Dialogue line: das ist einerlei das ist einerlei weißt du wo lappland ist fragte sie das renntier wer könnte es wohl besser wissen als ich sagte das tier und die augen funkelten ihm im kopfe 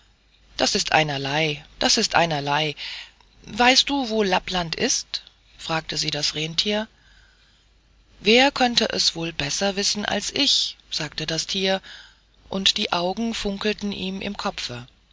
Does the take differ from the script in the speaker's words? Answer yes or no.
no